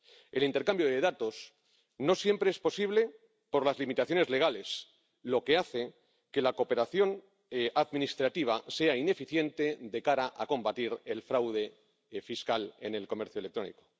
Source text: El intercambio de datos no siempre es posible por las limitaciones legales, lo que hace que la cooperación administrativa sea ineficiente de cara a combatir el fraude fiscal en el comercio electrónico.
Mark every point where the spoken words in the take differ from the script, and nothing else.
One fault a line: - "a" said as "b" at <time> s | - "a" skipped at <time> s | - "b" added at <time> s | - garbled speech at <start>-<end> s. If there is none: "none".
none